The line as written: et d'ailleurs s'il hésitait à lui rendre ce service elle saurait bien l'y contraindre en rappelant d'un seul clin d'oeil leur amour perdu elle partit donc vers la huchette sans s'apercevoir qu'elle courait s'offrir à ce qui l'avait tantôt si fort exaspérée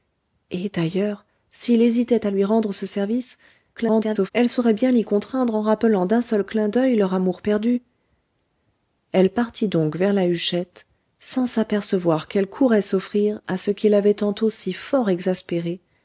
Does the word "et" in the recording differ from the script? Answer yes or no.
no